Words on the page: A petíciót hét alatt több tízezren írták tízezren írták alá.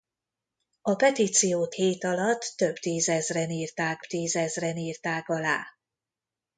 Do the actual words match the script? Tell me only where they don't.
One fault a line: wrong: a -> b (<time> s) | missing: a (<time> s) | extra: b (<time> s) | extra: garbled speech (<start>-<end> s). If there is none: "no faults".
no faults